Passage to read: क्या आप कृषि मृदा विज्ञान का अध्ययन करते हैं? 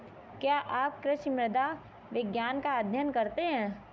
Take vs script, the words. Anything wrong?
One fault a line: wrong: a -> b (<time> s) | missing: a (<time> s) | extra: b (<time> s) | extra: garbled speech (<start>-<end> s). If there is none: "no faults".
no faults